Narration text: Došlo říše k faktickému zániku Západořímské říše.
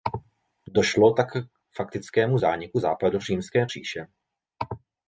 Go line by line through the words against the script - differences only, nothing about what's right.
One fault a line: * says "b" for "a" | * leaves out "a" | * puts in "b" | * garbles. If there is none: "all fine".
* says "tak" for "říše"